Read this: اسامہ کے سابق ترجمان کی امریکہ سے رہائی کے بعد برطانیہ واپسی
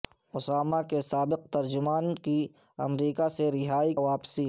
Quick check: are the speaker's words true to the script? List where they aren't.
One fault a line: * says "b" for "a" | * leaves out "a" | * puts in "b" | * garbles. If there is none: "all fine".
* leaves out "کے بعد برطانیہ"